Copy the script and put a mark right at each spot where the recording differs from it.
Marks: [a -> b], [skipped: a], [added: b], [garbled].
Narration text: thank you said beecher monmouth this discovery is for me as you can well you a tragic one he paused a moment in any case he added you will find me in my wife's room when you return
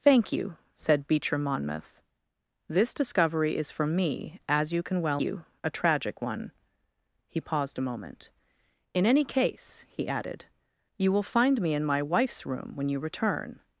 thank you said beecher monmouth this discovery is for me as you can well you a tragic one he paused a moment in any case he added you will find me in my wife's room when you return